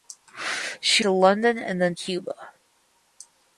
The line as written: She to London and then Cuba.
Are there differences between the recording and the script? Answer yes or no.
no